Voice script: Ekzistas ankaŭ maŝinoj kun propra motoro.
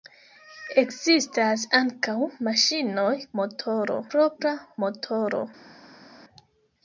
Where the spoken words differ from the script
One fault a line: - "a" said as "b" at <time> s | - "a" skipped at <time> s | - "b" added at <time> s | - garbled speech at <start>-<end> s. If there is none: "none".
- "kun" said as "motoro" at 3.4 s